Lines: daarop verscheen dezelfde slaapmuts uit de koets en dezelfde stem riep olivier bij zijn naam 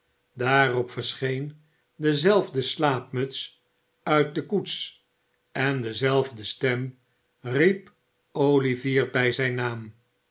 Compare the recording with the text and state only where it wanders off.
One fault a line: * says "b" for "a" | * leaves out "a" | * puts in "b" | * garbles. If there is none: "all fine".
all fine